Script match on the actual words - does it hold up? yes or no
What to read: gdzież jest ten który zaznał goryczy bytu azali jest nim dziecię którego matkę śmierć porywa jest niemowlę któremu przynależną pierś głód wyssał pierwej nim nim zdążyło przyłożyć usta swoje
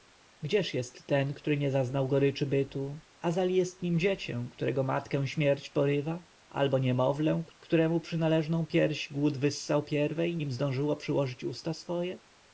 no